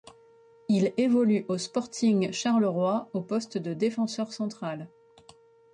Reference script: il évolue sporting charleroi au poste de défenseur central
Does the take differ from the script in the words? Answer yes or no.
yes